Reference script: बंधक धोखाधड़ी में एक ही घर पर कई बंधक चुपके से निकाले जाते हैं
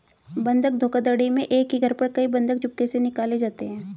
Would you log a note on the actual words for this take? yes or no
no